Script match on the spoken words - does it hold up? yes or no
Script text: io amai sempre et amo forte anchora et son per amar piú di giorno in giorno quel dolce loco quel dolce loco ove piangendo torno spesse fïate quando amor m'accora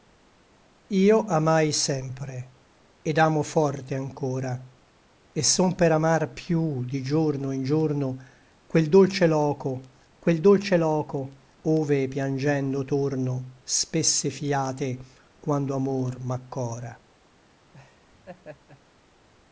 yes